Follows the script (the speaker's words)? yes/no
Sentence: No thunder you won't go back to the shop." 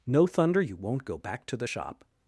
yes